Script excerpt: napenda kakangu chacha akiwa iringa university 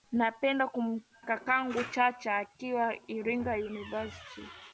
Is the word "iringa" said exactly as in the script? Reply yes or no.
yes